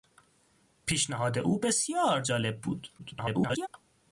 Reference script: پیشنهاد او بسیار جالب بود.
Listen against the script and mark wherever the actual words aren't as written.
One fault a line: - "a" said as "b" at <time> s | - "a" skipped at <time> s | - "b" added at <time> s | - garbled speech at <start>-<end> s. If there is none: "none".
- garbled speech at 3.0-3.7 s